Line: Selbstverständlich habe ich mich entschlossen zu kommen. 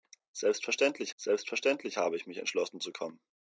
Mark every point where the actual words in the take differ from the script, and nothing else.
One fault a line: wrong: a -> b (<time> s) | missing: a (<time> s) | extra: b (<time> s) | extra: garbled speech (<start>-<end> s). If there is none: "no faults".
extra: selbstverständlich (1.1 s)